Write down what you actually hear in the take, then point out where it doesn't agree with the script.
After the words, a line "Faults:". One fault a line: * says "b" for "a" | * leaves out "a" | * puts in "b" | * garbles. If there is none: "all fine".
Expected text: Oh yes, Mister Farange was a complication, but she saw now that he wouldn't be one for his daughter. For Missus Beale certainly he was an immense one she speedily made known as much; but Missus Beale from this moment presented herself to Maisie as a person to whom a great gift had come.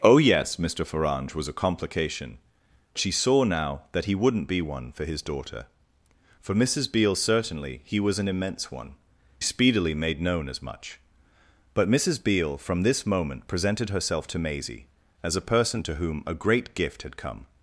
Oh yes, Mister Farange was a complication, she saw now that he wouldn't be one for his daughter. For Missus Beale certainly he was an immense one speedily made known as much; but Missus Beale from this moment presented herself to Maisie as a person to whom a great gift had come.
Faults:
* leaves out "but"
* leaves out "she"